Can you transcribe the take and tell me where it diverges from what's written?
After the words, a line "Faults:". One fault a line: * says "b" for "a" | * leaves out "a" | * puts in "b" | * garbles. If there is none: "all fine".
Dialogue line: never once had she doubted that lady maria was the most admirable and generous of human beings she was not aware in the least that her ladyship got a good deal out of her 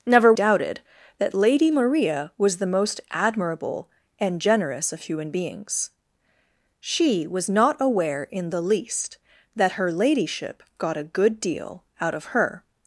never doubted that lady maria was the most admirable and generous of human beings she was not aware in the least that her ladyship got a good deal out of her
Faults:
* leaves out "once had she"